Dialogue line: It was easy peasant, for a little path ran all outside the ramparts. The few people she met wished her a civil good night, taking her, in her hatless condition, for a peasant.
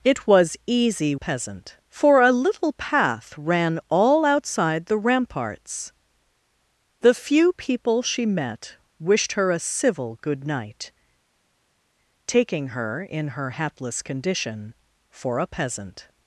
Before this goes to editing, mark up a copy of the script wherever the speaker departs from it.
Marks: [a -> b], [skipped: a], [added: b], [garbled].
It was easy peasant, for a little path ran all outside the ramparts. The few people she met wished her a civil good night, taking her, in her hatless condition, for a peasant.